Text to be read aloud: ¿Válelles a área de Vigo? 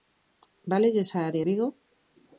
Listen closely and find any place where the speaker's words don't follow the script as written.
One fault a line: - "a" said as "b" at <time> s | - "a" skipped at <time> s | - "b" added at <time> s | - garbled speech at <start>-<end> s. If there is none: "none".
- "de" skipped at 1.4 s